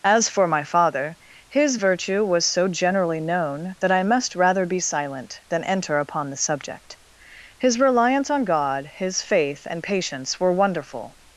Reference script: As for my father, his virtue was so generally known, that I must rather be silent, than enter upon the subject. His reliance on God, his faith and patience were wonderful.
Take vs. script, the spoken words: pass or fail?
pass